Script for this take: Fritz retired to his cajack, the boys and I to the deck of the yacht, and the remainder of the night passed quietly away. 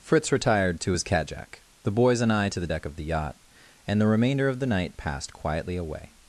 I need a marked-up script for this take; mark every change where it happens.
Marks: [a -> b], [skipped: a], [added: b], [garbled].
Fritz retired to his cajack, the boys and I to the deck of the yacht, and the remainder of the night passed quietly away.